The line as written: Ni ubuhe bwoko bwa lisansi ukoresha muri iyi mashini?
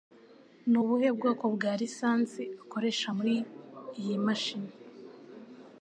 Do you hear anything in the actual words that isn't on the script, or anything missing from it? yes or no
no